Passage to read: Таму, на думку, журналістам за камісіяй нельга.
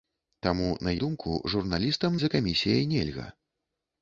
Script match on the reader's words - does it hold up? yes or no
yes